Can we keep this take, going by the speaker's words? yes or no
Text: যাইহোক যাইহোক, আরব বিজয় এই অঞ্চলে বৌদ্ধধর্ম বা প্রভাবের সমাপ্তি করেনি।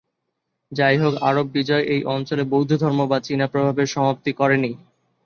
no